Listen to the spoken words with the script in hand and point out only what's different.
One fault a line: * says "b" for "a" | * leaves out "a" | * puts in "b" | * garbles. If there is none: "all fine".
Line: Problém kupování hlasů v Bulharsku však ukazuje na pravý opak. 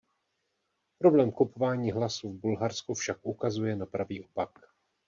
all fine